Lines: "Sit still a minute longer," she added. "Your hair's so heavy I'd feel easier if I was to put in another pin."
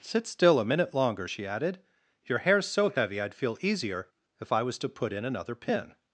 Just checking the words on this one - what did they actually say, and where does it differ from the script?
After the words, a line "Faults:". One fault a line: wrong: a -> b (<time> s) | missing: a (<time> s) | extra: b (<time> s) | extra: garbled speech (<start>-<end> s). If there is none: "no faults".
"Sit still a minute longer," she added. "Your hair's so heavy I'd feel easier if I was to put in another pin."
Faults:
no faults